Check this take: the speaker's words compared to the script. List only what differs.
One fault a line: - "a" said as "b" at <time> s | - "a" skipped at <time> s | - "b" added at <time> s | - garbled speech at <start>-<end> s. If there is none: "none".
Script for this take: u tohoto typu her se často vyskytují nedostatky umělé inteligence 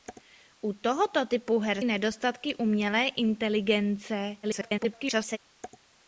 - "se často vyskytují" skipped at 1.8 s
- garbled speech at 4.4-5.4 s